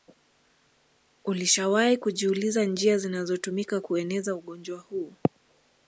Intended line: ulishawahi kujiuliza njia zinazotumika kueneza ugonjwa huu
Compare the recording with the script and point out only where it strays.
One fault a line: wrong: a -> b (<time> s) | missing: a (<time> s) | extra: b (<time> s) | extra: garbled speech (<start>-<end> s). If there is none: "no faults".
no faults